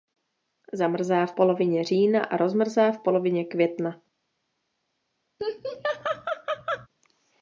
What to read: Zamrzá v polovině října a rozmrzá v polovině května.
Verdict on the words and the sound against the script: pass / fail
fail